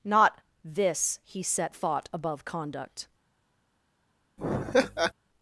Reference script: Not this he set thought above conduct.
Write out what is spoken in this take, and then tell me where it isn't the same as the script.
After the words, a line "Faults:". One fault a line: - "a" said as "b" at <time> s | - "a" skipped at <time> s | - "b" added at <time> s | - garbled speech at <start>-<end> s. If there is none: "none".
Not this he set thought above conduct.
Faults:
none